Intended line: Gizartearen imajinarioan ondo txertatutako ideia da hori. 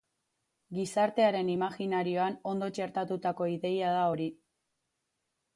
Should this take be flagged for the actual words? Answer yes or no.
no